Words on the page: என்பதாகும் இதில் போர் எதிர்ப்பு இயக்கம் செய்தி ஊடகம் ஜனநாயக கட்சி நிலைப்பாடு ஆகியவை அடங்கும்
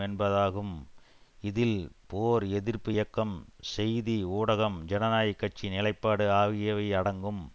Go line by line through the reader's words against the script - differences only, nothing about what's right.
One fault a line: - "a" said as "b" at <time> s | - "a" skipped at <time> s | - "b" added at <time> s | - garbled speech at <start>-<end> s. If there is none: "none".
none